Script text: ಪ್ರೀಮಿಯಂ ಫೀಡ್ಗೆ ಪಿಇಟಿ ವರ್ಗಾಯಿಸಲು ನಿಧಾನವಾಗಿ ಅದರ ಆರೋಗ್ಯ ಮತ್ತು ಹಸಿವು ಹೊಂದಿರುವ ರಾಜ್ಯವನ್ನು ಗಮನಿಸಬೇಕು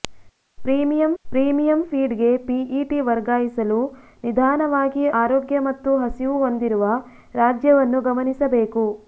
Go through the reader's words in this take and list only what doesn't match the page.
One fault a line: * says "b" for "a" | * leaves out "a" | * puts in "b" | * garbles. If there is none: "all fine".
* puts in "ಪ್ರೀಮಿಯಂ"
* leaves out "ಅದರ"